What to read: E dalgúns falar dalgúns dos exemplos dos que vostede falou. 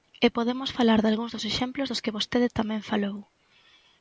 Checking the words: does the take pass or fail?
fail